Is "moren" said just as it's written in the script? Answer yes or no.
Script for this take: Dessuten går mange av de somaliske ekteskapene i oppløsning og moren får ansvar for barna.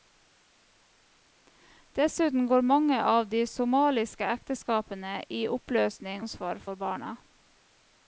no